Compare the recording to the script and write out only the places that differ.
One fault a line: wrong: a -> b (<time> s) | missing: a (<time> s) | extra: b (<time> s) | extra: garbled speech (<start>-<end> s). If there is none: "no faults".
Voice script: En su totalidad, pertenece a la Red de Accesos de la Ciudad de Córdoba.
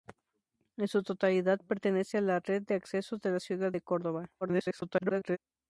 extra: garbled speech (4.4-5.4 s)